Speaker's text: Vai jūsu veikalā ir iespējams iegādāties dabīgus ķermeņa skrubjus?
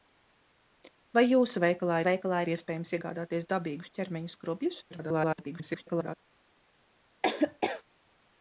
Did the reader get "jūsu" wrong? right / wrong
right